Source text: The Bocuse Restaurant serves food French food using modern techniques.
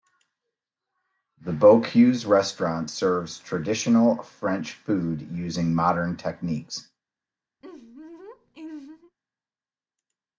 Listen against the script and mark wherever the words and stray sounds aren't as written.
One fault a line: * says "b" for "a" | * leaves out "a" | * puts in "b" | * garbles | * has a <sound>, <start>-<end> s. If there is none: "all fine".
* says "traditional" for "food"
* has a laugh, 7.6-9.2 s